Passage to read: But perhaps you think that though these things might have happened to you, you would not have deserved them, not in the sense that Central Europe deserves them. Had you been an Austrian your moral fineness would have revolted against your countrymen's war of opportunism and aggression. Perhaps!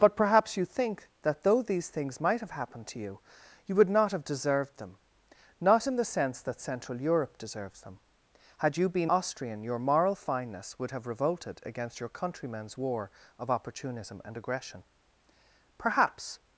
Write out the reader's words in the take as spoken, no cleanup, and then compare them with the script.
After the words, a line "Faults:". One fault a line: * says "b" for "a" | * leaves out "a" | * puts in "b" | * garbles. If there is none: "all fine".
But perhaps you think that though these things might have happened to you, you would not have deserved them, not in the sense that Central Europe deserves them. Had you been Austrian your moral fineness would have revolted against your countrymen's war of opportunism and aggression. Perhaps!
Faults:
* leaves out "an"